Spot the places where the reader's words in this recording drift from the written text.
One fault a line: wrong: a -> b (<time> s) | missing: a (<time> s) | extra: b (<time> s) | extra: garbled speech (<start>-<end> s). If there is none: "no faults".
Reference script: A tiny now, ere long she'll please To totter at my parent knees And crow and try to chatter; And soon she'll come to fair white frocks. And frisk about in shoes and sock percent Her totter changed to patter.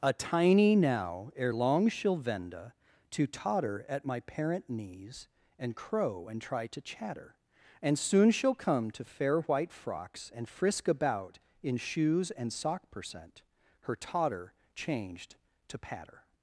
wrong: please -> venda (2.2 s)